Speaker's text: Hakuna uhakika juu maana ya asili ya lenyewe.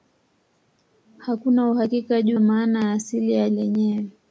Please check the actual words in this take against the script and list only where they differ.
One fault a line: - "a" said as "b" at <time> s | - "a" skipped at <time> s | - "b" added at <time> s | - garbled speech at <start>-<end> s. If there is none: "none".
none